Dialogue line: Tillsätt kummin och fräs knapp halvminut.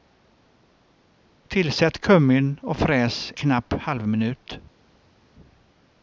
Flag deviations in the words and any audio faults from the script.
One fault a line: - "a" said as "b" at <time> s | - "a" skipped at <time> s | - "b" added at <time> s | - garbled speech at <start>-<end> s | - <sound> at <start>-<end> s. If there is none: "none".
none